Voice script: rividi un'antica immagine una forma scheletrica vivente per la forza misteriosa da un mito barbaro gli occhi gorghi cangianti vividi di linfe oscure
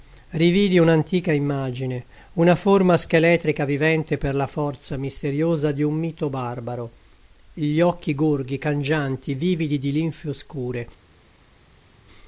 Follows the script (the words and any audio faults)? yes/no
no